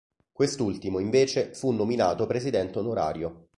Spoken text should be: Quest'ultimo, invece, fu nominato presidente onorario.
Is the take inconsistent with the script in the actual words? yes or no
no